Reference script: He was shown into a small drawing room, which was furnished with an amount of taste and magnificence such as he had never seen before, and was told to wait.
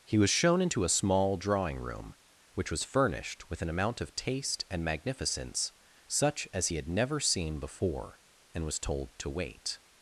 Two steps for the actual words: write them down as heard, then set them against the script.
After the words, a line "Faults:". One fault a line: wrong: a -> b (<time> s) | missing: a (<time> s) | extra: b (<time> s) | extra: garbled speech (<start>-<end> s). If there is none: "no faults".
He was shown into a small drawing room, which was furnished with an amount of taste and magnificence such as he had never seen before, and was told to wait.
Faults:
no faults